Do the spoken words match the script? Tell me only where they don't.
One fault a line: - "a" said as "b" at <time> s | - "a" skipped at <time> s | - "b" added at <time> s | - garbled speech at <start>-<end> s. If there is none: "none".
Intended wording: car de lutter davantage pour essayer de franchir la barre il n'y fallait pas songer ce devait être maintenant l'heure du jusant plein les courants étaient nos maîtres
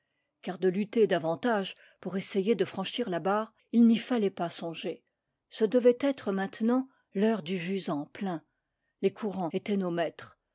none